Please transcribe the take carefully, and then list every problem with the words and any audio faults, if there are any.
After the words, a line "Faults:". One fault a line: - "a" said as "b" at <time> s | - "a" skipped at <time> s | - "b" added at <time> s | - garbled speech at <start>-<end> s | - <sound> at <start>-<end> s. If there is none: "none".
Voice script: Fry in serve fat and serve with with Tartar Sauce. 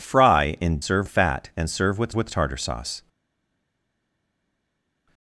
Fry in serve fat and serve with with Tartar Sauce.
Faults:
none